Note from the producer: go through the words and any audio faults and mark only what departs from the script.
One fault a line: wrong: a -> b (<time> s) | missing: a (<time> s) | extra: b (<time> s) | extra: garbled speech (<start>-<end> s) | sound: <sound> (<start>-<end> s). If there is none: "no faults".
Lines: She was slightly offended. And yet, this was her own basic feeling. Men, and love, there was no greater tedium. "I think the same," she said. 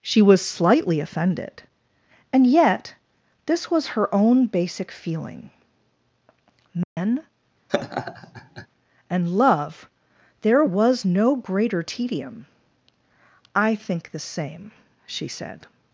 sound: dropout (6.8-7.0 s)
sound: laugh (7.7-8.7 s)